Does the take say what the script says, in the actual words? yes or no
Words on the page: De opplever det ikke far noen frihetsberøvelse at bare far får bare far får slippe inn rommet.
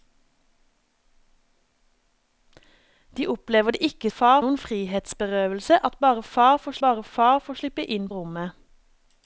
yes